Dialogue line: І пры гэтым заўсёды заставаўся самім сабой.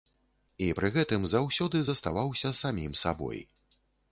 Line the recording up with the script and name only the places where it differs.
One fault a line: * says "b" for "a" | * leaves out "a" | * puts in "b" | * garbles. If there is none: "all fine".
all fine